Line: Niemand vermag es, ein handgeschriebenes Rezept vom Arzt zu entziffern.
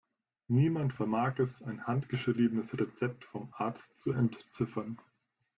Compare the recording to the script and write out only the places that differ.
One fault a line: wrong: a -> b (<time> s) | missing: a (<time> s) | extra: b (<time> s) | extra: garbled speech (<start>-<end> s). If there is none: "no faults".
no faults